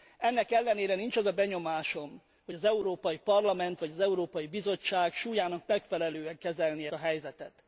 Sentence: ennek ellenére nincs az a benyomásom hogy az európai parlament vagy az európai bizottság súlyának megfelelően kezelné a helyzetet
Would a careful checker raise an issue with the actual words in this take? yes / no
no